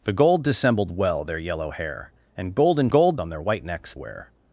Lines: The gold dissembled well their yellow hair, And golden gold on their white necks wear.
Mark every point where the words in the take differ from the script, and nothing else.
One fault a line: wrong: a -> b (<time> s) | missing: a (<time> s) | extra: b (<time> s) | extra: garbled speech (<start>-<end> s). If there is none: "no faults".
no faults